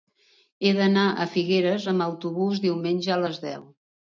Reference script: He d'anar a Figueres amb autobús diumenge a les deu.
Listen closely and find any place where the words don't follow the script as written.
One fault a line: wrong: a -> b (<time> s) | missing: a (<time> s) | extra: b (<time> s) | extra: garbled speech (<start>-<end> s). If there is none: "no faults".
no faults